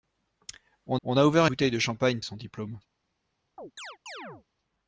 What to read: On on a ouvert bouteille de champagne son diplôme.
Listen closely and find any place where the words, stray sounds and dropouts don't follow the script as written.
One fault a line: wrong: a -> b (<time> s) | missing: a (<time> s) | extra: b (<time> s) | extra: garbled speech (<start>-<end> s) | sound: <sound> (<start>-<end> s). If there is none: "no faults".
sound: chirp (3.6-4.5 s)